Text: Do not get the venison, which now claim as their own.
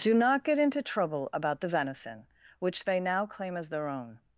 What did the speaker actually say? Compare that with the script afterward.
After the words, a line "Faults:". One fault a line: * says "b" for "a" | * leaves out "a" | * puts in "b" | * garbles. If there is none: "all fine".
Do not get into trouble about the venison, which they now claim as their own.
Faults:
* puts in "into trouble about"
* puts in "they"